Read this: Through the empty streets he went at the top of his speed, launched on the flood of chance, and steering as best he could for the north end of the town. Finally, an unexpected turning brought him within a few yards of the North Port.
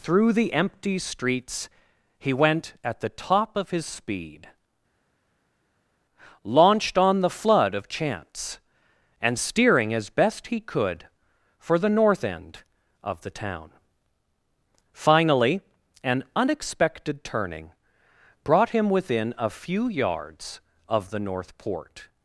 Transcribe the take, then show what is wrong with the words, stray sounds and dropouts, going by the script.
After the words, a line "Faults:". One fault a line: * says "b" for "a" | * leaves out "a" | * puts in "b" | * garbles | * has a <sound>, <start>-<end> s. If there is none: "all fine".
Through the empty streets he went at the top of his speed, launched on the flood of chance, and steering as best he could for the north end of the town. Finally, an unexpected turning brought him within a few yards of the North Port.
Faults:
all fine